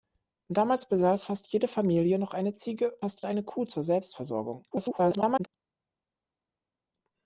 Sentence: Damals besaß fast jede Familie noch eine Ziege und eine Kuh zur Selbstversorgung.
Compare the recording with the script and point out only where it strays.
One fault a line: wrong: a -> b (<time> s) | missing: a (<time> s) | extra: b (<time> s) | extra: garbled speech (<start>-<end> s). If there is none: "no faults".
wrong: und -> fast (3.0 s)
extra: garbled speech (4.7-5.5 s)